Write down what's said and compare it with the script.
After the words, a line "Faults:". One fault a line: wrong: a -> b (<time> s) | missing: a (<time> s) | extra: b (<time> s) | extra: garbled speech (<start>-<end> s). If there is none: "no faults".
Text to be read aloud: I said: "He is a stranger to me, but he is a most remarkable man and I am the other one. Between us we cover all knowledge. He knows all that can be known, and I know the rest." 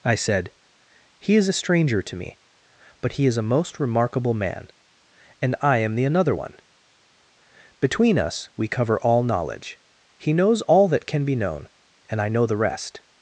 I said: "He is a stranger to me, but he is a most remarkable man and I am the another one. Between us we cover all knowledge. He knows all that can be known, and I know the rest."
Faults:
wrong: other -> another (6.0 s)